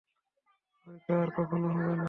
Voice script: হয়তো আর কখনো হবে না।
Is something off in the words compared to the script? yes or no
no